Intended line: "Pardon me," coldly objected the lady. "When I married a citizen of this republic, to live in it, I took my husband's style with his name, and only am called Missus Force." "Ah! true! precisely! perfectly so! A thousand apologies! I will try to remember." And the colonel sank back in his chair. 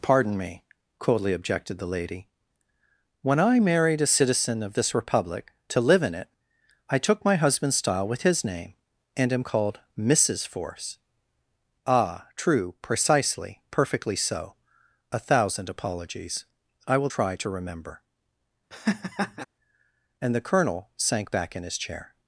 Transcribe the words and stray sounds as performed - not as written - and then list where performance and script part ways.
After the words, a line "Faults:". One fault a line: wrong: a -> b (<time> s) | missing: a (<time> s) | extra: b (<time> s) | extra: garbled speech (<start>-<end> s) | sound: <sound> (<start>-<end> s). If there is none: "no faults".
"Pardon me," coldly objected the lady. "When I married a citizen of this republic, to live in it, I took my husband's style with his name, and am called Missus Force." "Ah! true! precisely! perfectly so! A thousand apologies! I will try to remember." And the colonel sank back in his chair.
Faults:
missing: only (9.3 s)
sound: laugh (18.7-19.4 s)